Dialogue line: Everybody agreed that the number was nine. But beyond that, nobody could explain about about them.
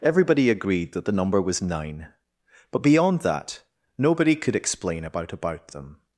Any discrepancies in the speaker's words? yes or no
no